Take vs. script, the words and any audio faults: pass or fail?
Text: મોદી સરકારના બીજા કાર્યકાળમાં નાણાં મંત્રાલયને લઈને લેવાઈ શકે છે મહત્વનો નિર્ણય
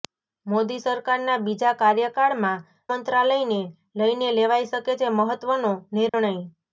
fail